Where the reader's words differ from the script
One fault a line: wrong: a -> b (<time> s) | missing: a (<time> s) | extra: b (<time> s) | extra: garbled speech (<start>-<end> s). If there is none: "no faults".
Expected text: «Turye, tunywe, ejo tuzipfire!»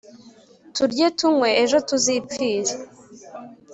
no faults